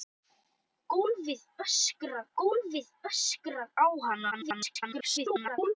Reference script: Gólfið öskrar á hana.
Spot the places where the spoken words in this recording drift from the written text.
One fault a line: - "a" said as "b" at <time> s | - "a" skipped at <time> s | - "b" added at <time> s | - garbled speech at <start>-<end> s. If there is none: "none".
- "gólfið öskrar" added at 2.4 s
- garbled speech at 4.3-5.8 s